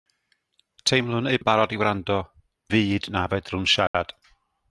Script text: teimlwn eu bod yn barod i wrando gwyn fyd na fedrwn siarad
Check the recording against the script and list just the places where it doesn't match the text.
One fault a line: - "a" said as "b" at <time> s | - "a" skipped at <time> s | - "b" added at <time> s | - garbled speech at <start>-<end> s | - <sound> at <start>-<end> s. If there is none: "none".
- "bod" skipped at 1.4 s
- "gwyn" skipped at 2.2 s
- dropout at 3.9-3.9 s